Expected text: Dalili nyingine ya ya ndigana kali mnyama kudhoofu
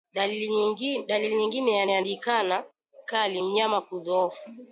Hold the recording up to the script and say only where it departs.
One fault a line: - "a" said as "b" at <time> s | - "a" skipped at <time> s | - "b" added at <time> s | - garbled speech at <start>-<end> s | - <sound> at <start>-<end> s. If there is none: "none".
none